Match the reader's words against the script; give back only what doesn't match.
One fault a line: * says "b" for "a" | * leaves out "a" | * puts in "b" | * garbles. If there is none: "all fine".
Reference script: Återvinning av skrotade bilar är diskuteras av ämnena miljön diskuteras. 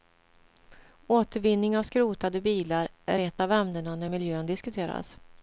* says "ett" for "diskuteras"
* puts in "när"